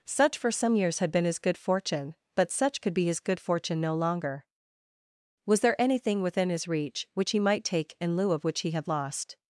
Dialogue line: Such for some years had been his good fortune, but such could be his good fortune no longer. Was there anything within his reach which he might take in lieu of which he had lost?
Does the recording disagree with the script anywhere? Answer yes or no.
no